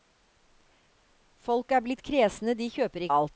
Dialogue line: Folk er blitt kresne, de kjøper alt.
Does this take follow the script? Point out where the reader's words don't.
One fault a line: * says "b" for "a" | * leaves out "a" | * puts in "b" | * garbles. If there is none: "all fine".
all fine